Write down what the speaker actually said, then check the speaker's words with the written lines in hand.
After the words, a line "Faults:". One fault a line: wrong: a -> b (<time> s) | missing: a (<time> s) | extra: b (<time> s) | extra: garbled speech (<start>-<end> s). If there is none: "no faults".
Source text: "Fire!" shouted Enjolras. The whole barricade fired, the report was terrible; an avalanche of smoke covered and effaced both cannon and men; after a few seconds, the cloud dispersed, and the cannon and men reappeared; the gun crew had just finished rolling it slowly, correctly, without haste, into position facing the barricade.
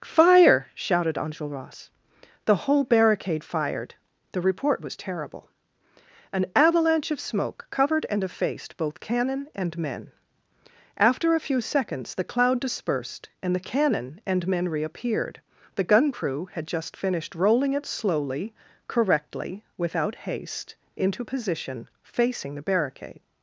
"Fire!" shouted Enjolras. The whole barricade fired, the report was terrible; an avalanche of smoke covered and effaced both cannon and men; after a few seconds, the cloud dispersed, and the cannon and men reappeared; the gun crew had just finished rolling it slowly, correctly, without haste, into position facing the barricade.
Faults:
no faults